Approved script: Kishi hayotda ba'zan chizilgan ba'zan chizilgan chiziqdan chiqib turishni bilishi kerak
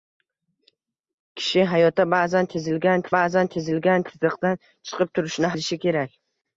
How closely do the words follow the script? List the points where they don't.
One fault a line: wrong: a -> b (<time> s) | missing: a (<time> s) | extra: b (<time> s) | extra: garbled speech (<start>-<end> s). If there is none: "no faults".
no faults